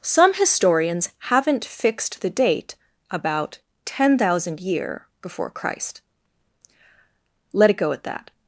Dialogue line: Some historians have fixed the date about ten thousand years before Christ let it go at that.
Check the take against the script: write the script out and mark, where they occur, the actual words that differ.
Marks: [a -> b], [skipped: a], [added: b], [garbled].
Some historians [have -> haven't] fixed the date about ten thousand [years -> year] before Christ let it go at that.